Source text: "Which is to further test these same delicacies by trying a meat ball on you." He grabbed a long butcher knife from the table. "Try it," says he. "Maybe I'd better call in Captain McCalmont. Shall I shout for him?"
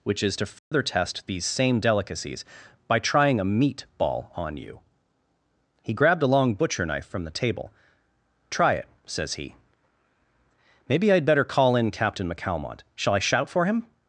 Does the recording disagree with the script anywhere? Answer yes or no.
no